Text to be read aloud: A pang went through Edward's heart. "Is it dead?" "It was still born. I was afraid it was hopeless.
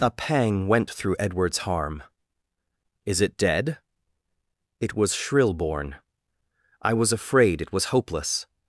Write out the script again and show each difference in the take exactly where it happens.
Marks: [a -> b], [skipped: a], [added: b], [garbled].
A pang went through Edward's [heart. -> harm] "Is it dead?" "It was [still -> shrill] born. I was afraid it was hopeless.